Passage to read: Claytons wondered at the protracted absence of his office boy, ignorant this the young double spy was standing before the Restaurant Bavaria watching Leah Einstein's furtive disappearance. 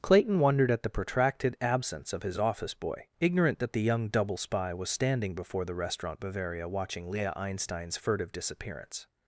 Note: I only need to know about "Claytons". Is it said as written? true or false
false